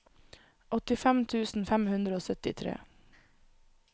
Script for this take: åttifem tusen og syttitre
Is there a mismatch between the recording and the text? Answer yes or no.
yes